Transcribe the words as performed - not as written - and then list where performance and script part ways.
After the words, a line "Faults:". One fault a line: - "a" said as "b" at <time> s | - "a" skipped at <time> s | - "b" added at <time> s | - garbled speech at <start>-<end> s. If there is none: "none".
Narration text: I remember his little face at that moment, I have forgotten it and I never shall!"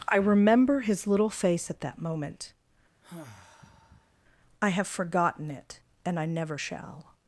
I remember his little face at that moment, I have forgotten it and I never shall!"
Faults:
none